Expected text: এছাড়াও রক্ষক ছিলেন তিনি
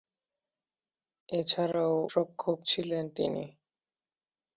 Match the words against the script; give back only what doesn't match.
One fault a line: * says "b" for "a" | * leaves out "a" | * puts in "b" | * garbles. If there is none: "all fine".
all fine